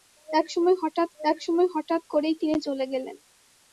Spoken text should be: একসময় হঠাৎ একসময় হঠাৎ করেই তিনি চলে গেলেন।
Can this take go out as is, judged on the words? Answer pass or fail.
pass